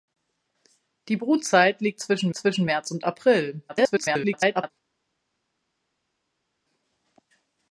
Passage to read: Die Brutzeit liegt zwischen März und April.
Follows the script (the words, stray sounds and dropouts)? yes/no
no